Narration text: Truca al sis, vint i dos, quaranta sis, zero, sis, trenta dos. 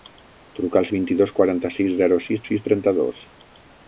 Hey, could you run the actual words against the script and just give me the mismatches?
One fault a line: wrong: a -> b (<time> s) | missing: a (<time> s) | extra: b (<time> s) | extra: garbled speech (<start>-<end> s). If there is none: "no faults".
missing: sis (0.9 s)
extra: sis (2.5 s)